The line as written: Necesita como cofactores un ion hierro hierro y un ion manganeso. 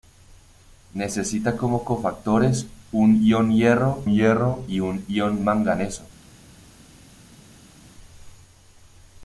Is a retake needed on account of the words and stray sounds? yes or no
no